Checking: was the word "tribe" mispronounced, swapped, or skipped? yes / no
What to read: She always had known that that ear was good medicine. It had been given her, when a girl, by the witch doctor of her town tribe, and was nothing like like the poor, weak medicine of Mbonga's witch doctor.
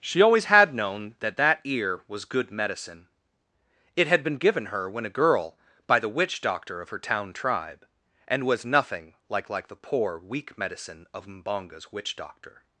no